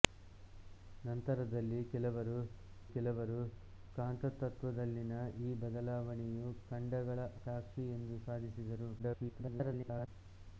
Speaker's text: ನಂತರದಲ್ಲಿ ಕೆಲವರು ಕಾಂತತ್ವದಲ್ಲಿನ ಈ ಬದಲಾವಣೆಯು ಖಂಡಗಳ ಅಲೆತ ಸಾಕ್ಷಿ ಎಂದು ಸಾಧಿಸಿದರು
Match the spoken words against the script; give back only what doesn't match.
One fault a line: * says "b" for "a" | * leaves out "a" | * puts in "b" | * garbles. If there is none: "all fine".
* puts in "ಕೆಲವರು"
* leaves out "ಅಲೆತ"
* garbles